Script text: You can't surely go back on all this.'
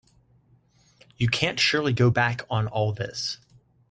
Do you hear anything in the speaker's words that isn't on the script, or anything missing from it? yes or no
no